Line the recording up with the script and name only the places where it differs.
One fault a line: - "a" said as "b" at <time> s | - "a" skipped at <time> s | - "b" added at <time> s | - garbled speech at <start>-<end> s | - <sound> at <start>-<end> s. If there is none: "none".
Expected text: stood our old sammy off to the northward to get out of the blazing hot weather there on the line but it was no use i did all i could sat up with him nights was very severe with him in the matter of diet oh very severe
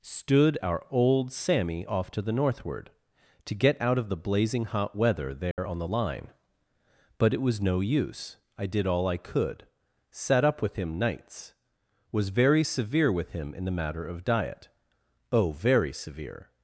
- dropout at 5.5-5.6 s